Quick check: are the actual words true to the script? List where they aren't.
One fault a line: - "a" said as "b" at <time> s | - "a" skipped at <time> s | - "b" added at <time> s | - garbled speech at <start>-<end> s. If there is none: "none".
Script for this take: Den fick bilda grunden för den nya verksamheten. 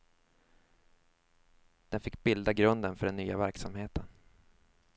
none